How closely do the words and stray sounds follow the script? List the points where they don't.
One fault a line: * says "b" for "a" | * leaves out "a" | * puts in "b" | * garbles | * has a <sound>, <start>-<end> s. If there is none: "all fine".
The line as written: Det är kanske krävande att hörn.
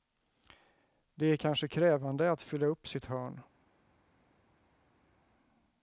* puts in "fylla upp sitt"